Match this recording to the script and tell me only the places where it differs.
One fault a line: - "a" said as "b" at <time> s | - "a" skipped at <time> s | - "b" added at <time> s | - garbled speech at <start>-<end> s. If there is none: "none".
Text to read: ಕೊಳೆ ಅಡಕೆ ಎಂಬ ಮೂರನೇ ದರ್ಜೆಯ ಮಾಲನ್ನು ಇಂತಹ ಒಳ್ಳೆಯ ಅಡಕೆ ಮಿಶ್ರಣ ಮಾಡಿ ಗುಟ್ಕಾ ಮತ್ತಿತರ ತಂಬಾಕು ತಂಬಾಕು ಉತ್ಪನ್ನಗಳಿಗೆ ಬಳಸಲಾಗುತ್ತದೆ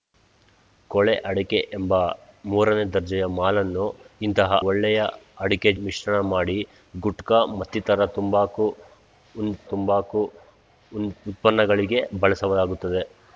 none